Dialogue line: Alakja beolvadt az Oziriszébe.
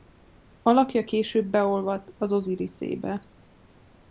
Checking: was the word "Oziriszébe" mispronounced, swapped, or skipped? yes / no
no